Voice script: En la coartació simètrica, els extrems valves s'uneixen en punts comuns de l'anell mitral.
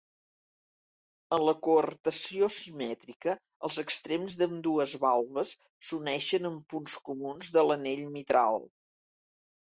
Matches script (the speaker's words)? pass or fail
fail